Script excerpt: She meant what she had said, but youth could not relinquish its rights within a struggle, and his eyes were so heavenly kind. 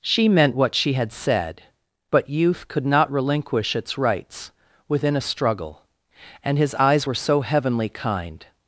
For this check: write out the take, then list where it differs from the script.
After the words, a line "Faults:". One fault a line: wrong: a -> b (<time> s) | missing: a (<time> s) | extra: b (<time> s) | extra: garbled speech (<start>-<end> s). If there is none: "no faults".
She meant what she had said, but youth could not relinquish its rights within a struggle, and his eyes were so heavenly kind.
Faults:
no faults